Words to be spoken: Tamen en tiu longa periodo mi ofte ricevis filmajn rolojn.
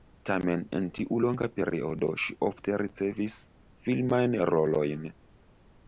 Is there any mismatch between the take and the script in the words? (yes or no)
yes